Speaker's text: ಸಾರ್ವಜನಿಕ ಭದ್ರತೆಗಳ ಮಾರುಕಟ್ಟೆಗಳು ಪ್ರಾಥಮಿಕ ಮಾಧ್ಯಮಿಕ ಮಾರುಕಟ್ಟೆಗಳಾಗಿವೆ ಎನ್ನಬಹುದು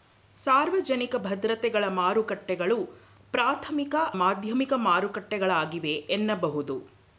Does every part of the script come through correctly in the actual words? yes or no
yes